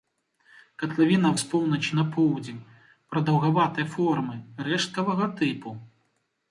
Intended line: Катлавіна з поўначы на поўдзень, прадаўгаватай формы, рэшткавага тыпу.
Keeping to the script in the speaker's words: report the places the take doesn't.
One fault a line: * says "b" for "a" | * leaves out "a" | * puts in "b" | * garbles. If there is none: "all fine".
all fine